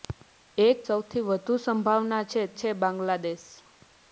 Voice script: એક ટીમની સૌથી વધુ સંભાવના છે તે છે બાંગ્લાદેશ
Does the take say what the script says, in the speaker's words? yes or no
no